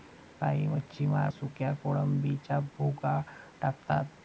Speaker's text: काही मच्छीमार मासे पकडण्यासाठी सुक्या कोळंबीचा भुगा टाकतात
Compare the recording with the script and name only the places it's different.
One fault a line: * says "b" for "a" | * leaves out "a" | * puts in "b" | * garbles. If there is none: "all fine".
* leaves out "मासे पकडण्यासाठी"